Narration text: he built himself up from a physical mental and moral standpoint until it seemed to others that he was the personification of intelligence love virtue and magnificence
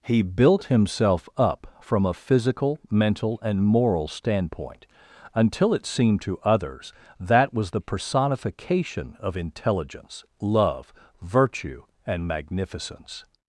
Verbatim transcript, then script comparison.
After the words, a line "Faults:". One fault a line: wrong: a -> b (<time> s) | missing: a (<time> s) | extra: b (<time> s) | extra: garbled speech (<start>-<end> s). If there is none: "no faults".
he built himself up from a physical mental and moral standpoint until it seemed to others that was the personification of intelligence love virtue and magnificence
Faults:
missing: he (7.5 s)